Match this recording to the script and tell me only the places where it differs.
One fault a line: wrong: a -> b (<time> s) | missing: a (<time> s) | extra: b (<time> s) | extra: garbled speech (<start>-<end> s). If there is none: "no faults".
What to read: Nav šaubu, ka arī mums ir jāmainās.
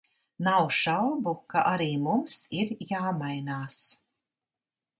no faults